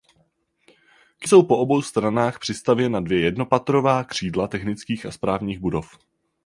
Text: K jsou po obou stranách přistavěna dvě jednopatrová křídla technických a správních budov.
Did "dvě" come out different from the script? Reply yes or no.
no